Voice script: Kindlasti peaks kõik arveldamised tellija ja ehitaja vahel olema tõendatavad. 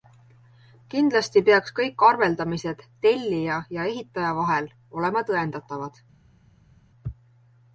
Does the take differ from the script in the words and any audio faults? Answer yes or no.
no